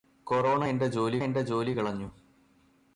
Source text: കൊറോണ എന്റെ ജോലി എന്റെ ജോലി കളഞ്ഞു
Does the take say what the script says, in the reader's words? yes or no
yes